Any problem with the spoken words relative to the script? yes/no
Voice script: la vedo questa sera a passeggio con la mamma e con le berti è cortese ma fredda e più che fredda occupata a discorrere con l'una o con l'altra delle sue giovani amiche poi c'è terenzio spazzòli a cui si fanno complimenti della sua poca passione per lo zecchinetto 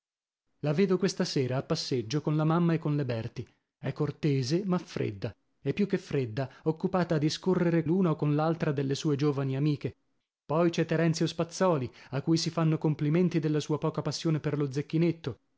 yes